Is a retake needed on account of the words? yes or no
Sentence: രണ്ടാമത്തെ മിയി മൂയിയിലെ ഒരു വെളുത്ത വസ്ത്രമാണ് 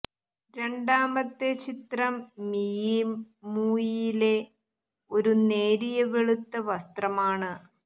yes